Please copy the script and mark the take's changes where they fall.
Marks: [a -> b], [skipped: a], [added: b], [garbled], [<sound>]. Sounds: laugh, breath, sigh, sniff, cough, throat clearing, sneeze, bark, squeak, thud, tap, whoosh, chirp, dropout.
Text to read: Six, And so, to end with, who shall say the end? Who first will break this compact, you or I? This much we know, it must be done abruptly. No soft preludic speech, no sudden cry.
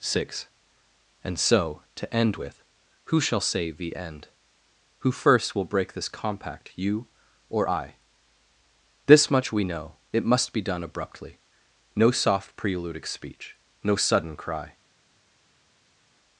Six, And so, to end with, who shall say the end? Who first will break this compact, you or I? This much we know, it must be done abruptly. No soft preludic speech, no sudden cry.